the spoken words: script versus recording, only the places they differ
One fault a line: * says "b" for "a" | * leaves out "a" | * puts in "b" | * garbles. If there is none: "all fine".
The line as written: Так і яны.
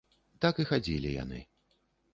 * puts in "хадзілі"